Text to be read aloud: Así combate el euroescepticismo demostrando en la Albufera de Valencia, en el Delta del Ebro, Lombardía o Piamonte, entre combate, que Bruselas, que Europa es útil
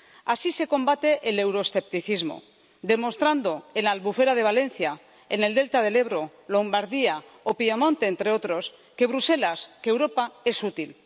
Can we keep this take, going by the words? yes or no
no